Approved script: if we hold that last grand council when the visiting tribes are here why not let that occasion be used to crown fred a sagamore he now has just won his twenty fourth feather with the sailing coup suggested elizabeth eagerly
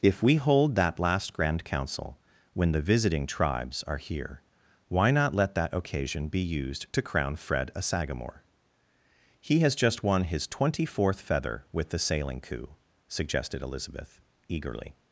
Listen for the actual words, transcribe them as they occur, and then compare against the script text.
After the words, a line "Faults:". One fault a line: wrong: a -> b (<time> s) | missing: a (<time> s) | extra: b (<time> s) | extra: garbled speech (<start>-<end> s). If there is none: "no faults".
if we hold that last grand council when the visiting tribes are here why not let that occasion be used to crown fred a sagamore he has just won his twenty fourth feather with the sailing coup suggested elizabeth eagerly
Faults:
missing: now (9.6 s)